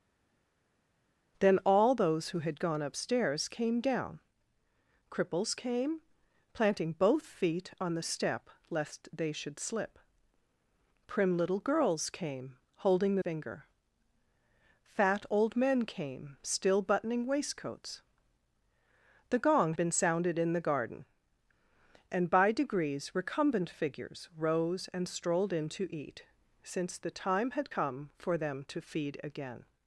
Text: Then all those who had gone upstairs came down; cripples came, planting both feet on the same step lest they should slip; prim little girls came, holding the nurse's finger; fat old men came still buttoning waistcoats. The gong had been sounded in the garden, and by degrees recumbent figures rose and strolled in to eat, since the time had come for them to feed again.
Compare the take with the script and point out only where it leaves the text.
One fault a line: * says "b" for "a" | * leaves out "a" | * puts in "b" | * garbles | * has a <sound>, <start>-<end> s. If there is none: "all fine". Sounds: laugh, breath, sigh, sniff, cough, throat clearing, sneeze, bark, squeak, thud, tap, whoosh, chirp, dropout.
* leaves out "same"
* leaves out "nurse's"
* leaves out "had"